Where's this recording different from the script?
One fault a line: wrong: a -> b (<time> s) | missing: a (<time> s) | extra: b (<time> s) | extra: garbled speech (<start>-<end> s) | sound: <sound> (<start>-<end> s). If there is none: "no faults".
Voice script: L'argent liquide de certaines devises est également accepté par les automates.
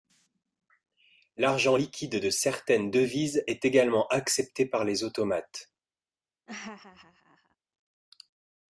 sound: laugh (6.5-7.6 s)